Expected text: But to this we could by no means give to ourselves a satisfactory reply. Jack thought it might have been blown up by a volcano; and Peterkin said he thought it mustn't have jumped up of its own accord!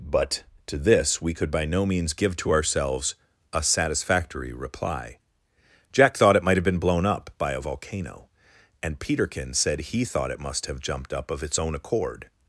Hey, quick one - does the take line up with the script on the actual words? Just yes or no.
no